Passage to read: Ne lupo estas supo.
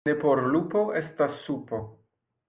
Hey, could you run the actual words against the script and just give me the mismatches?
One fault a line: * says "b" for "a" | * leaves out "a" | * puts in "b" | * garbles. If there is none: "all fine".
* puts in "por"